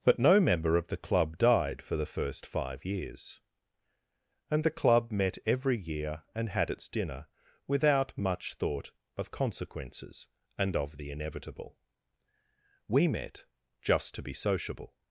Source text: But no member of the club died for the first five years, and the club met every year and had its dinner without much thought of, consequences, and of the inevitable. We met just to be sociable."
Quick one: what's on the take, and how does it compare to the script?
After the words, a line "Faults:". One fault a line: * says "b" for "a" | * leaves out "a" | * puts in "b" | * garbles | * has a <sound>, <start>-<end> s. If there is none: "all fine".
But no member of the club died for the first five years, and the club met every year and had its dinner without much thought of, consequences, and of the inevitable. We met just to be sociable."
Faults:
all fine